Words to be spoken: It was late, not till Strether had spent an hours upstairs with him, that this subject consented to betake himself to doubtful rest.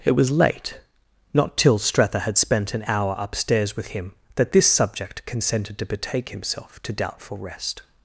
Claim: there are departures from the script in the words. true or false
true